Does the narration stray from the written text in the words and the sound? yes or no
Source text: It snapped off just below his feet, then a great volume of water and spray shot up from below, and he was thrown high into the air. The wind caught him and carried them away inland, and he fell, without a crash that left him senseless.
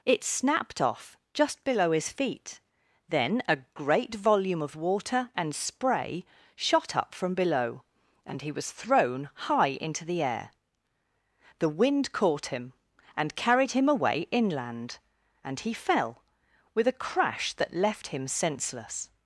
yes